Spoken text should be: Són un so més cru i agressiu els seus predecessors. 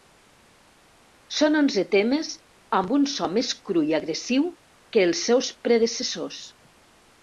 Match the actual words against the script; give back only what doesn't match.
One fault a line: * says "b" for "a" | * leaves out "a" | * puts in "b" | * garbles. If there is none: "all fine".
* puts in "onze temes amb"
* puts in "que"